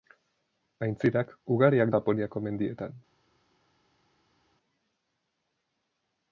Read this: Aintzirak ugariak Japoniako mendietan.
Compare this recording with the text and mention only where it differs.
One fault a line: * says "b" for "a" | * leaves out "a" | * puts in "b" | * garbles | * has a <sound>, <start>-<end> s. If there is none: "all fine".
all fine